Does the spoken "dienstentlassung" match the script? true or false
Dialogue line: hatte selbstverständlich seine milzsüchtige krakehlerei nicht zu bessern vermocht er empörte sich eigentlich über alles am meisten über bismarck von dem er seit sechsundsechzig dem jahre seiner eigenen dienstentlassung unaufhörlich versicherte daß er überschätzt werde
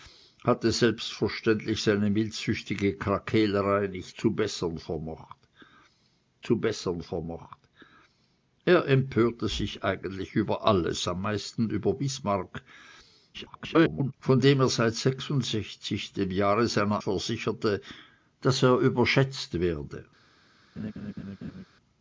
false